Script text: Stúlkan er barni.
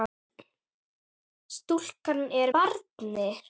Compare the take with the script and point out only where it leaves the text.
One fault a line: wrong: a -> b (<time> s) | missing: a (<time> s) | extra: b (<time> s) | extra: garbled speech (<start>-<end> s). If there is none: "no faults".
no faults